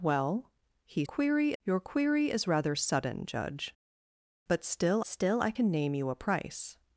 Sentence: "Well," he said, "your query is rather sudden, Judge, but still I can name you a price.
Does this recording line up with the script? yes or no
no